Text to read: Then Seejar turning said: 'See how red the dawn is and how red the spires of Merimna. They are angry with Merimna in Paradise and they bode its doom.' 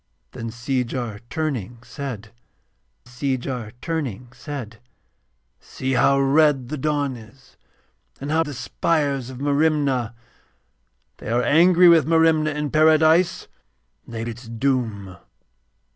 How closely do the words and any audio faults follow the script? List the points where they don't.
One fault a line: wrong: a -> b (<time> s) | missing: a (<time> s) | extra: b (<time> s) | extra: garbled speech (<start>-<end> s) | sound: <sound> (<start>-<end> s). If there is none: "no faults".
extra: Seejar turning said (3.0 s)
missing: red (8.5 s)
missing: bode (14.2 s)